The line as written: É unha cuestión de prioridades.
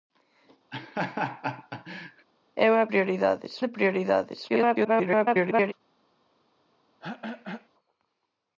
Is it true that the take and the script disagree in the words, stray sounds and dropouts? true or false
true